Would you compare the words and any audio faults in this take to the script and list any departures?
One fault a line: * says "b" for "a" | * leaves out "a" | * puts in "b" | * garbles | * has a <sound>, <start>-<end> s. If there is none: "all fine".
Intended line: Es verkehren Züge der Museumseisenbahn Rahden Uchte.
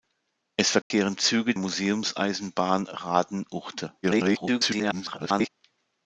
* has a dropout, 0.8-0.9 s
* leaves out "der"
* garbles